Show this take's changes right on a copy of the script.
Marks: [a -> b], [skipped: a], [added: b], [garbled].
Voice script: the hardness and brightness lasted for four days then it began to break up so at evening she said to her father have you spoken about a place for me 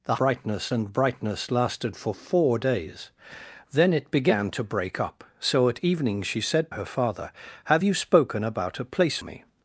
the [hardness -> brightness] and brightness lasted for four days then it began to break up so at evening she said [skipped: to] her father have you spoken about a place [skipped: for] me